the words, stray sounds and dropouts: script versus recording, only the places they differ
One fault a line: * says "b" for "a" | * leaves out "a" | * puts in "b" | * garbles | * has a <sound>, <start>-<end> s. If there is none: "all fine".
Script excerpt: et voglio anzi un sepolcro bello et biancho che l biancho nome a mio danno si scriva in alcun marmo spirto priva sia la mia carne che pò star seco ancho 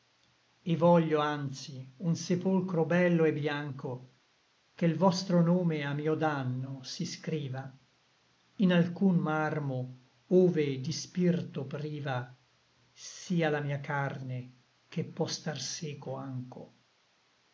* says "vostro" for "biancho"
* puts in "ove di"